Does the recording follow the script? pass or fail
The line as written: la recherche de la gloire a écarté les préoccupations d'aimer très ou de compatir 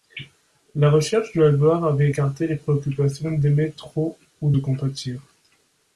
fail